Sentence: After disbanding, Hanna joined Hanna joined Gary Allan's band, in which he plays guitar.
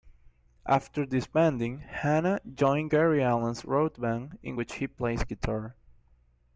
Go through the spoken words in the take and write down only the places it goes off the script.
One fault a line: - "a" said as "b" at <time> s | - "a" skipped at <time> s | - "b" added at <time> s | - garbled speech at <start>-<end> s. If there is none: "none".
- "Hanna joined" skipped at 2.9 s
- "road" added at 3.6 s